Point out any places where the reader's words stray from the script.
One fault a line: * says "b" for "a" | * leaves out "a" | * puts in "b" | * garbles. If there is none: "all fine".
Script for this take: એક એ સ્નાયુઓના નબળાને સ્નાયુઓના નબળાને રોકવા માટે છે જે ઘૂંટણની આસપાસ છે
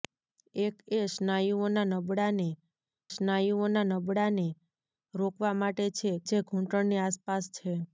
all fine